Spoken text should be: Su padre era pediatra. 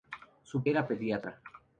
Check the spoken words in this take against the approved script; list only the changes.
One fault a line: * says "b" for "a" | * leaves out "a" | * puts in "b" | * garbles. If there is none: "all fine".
* leaves out "padre"